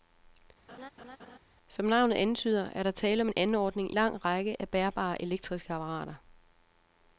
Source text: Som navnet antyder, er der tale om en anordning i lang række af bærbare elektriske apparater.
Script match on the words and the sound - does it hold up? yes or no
no